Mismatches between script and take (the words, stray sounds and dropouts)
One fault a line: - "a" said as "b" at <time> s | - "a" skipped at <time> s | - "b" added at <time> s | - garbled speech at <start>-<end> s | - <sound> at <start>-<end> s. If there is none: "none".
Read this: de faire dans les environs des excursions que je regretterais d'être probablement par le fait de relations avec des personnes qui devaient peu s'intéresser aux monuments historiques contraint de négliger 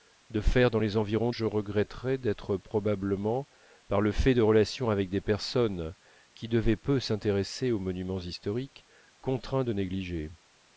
- "des excursions que" skipped at 1.3 s